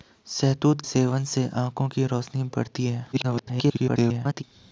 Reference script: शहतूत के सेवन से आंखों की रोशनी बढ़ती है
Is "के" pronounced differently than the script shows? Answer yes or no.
yes